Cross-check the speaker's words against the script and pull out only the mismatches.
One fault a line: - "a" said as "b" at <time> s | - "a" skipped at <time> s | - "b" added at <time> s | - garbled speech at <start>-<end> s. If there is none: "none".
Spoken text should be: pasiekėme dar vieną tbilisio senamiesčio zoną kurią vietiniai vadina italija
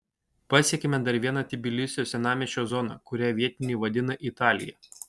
none